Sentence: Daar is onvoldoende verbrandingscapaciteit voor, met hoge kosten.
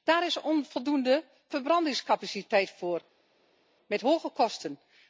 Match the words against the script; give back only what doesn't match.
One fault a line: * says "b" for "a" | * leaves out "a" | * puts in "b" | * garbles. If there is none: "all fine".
all fine